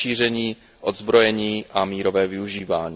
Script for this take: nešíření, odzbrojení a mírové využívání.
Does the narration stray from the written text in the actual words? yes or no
no